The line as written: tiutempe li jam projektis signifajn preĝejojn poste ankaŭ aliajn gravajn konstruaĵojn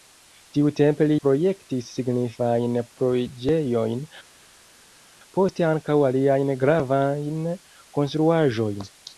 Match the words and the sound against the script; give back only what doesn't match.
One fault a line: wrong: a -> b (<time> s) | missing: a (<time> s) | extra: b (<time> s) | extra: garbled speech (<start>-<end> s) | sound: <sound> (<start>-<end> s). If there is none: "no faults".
missing: jam (1.2 s)